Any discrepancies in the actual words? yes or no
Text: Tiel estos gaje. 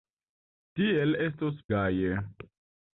no